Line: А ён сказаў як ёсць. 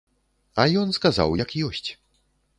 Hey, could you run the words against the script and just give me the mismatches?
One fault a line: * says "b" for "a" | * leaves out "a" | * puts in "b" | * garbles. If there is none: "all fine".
all fine